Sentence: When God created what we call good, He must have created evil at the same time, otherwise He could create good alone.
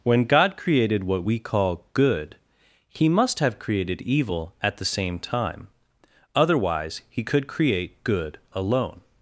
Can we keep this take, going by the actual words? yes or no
yes